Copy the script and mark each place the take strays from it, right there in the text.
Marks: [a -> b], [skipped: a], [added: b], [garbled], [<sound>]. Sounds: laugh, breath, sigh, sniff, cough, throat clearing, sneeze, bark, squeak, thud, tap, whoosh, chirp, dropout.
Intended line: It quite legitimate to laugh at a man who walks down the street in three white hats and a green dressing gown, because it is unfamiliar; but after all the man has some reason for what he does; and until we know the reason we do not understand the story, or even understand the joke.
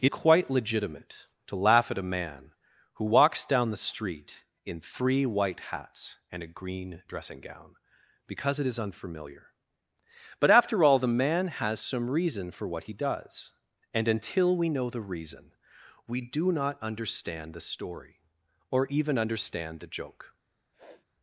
It quite legitimate to laugh at a man who walks down the street in three white hats and a green dressing gown, because it is unfamiliar; but after all the man has some reason for what he does; and until we know the reason we do not understand the story, or even understand the joke. [sniff]